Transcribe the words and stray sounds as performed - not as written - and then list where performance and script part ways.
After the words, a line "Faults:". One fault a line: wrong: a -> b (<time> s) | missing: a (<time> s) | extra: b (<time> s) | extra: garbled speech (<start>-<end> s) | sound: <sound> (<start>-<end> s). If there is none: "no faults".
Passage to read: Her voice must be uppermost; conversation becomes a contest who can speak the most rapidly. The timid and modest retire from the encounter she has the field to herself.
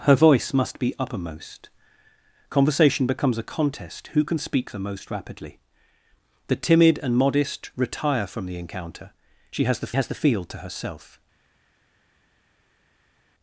Her voice must be uppermost; conversation becomes a contest who can speak the most rapidly. The timid and modest retire from the encounter she has the has the field to herself.
Faults:
extra: has the (9.9 s)